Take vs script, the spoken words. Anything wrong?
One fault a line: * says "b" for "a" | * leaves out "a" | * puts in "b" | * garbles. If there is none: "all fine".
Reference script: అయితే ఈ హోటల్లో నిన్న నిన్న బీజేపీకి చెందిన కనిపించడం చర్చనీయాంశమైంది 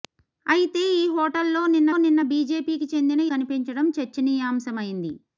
all fine